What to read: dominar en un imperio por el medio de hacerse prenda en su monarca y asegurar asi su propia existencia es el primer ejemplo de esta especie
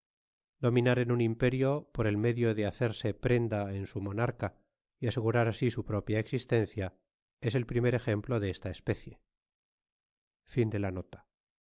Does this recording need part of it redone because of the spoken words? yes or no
no